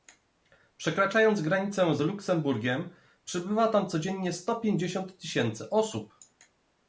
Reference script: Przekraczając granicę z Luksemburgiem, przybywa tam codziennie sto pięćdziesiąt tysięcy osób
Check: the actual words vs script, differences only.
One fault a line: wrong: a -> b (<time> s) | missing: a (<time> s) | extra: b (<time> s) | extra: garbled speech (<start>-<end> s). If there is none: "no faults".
no faults